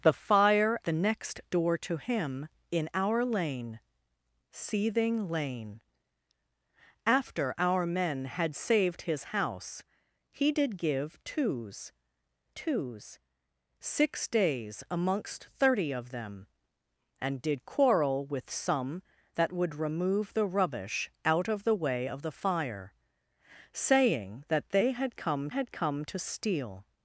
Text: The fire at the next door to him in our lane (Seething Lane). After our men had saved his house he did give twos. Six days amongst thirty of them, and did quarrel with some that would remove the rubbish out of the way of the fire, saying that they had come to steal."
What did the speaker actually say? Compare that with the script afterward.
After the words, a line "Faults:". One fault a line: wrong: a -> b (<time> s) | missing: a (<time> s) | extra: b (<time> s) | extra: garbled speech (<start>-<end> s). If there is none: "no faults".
The fire the next door to him in our lane (Seething Lane). After our men had saved his house he did give twos twos. Six days amongst thirty of them, and did quarrel with some that would remove the rubbish out of the way of the fire, saying that they had come had come to steal."
Faults:
missing: at (0.8 s)
extra: twos (12.5 s)
extra: had come (25.5 s)